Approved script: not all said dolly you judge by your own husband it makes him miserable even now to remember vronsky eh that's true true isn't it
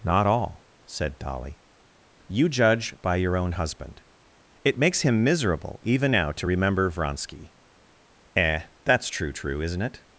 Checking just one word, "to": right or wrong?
right